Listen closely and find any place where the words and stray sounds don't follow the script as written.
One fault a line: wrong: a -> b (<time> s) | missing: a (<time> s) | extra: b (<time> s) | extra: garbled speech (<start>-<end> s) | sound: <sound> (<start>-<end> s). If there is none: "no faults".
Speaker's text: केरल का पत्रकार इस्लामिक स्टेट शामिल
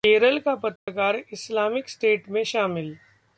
sound: dropout (0.8-0.9 s)
extra: में (2.3 s)